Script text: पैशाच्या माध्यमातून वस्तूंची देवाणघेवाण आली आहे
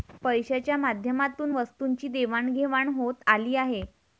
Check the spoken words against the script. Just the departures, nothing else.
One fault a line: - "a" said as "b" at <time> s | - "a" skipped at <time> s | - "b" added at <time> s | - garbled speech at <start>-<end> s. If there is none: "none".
- "होत" added at 2.9 s